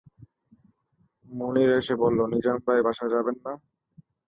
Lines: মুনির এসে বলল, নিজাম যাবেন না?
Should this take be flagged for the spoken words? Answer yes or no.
yes